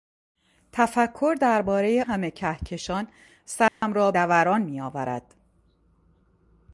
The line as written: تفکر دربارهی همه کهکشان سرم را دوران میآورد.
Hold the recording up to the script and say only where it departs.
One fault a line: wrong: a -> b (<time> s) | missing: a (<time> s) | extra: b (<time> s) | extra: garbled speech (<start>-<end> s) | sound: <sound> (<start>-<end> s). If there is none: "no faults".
sound: dropout (3.7-3.8 s)